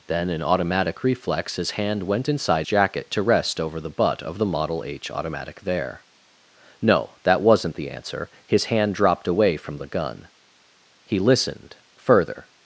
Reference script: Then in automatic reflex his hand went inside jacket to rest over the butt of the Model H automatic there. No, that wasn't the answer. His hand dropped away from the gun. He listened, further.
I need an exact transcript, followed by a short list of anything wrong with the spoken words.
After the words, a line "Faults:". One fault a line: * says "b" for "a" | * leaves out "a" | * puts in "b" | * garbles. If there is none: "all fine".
Then in automatic reflex his hand went inside jacket to rest over the butt of the Model H automatic there. No, that wasn't the answer. His hand dropped away from the gun. He listened, further.
Faults:
all fine